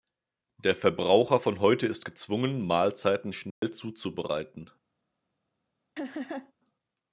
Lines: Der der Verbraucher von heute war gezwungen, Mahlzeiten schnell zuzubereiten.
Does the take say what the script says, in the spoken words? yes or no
no